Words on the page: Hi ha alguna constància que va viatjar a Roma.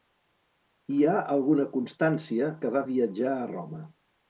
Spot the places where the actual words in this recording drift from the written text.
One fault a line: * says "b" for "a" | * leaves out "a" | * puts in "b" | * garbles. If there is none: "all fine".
all fine